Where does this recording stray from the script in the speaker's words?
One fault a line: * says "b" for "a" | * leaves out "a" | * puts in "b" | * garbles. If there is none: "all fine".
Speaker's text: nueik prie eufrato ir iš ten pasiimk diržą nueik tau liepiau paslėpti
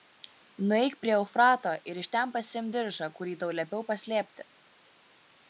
* says "kurį" for "nueik"